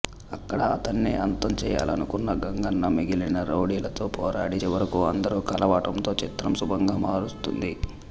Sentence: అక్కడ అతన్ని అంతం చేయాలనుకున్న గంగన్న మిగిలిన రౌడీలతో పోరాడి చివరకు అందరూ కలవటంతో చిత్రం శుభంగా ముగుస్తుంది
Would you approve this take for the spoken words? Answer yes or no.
yes